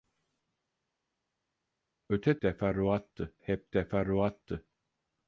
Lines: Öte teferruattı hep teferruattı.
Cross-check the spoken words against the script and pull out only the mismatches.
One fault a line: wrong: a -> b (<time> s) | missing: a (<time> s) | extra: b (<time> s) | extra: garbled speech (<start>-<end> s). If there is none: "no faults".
no faults